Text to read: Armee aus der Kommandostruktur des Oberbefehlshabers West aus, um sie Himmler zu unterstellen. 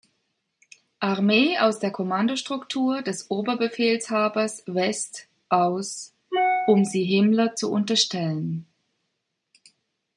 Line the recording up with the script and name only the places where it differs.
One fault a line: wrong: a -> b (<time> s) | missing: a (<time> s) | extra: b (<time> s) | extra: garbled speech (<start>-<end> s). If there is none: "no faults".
no faults